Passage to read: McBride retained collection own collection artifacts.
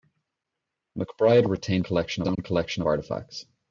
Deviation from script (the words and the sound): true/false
true